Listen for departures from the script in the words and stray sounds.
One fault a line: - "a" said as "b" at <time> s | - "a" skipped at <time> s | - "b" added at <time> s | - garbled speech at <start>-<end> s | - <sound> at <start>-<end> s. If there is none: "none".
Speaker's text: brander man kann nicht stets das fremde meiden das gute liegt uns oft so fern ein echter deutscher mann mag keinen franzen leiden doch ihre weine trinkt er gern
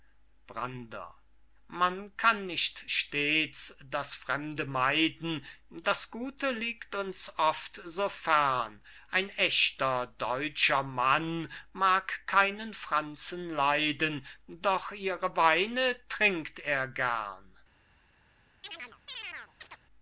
- chirp at 18.6-19.8 s